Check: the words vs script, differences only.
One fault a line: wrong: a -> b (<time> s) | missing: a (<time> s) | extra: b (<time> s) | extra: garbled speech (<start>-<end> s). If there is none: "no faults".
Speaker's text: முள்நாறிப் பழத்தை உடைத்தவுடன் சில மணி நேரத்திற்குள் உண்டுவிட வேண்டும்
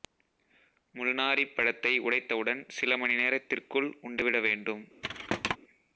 no faults